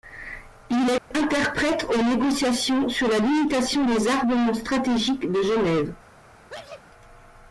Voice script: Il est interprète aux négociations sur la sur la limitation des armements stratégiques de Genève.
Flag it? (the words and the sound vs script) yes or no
yes